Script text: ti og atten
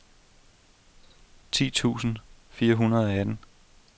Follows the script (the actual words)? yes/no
no